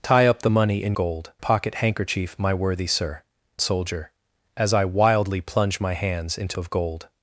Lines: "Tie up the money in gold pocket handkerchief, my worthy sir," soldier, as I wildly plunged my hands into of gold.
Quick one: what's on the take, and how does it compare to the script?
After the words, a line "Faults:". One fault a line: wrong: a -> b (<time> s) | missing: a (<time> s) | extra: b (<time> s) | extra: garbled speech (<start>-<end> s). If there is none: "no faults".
"Tie up the money in gold pocket handkerchief, my worthy sir," soldier, as I wildly plunged my hands into of gold.
Faults:
no faults